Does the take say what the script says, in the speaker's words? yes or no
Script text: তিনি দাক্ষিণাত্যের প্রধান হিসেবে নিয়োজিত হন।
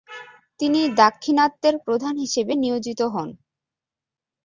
yes